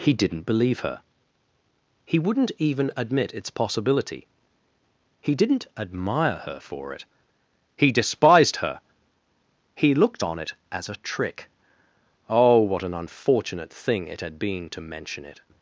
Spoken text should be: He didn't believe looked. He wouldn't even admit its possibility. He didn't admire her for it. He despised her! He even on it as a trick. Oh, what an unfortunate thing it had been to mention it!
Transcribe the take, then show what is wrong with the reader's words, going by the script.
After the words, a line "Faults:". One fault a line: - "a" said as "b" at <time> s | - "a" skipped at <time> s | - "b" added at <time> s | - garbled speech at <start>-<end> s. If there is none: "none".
He didn't believe her. He wouldn't even admit its possibility. He didn't admire her for it. He despised her! He looked on it as a trick. Oh, what an unfortunate thing it had been to mention it!
Faults:
- "looked" said as "her" at 0.8 s
- "even" said as "looked" at 9.9 s